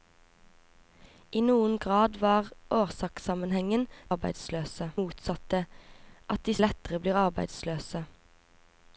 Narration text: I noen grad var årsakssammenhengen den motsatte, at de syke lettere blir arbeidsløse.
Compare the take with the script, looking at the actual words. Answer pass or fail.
fail